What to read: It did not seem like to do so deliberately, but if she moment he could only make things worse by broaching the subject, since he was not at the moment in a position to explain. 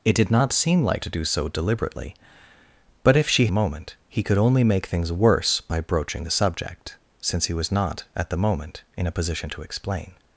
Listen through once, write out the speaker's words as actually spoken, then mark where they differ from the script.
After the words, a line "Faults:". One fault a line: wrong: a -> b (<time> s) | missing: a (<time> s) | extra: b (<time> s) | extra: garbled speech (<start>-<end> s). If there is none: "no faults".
It did not seem like to do so deliberately, but if she moment he could only make things worse by broaching the subject, since he was not at the moment in a position to explain.
Faults:
no faults